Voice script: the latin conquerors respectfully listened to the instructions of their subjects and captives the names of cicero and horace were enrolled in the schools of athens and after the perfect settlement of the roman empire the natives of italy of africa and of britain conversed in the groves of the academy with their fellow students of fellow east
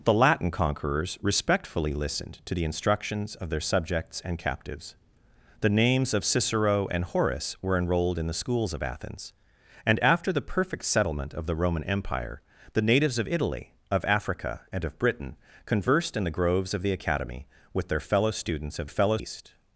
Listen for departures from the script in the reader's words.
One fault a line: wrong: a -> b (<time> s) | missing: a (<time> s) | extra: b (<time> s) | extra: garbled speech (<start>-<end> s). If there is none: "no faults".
no faults